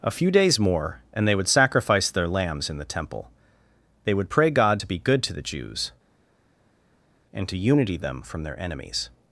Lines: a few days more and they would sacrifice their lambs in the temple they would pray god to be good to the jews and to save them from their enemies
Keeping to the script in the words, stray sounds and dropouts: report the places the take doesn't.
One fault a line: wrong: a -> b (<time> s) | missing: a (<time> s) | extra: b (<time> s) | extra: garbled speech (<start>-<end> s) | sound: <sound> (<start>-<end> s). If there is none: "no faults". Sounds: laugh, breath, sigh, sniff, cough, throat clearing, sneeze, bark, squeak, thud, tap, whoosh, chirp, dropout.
wrong: save -> unity (7.6 s)